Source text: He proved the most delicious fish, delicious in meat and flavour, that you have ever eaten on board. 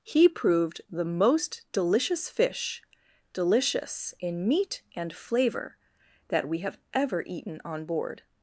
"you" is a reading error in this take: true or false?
true